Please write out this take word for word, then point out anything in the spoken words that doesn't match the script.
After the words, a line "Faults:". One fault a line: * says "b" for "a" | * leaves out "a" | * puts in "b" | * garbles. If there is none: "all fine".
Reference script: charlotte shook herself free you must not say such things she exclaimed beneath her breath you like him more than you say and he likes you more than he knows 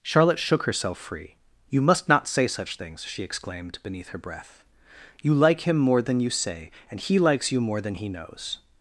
charlotte shook herself free you must not say such things she exclaimed beneath her breath you like him more than you say and he likes you more than he knows
Faults:
all fine